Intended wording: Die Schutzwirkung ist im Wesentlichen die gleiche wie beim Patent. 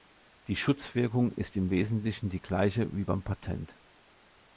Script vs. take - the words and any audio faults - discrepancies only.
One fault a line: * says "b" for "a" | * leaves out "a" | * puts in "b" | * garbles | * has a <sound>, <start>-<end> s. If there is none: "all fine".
all fine